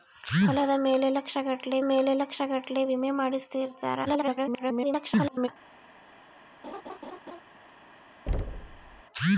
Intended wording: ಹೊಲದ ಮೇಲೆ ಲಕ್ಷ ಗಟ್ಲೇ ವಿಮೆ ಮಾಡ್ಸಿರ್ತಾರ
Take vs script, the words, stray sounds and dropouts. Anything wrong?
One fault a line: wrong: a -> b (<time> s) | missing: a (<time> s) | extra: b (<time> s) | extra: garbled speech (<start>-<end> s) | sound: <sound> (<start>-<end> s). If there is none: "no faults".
extra: ಮೇಲೆ ಲಕ್ಷ ಗಟ್ಲೇ (1.8 s)
extra: garbled speech (4.1-5.5 s)
sound: laugh (6.6-7.4 s)
sound: thud (8.3-9.0 s)